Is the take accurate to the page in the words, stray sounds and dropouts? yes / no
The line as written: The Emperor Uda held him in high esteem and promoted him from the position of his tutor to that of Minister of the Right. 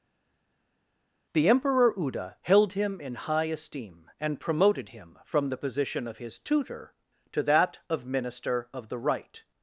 yes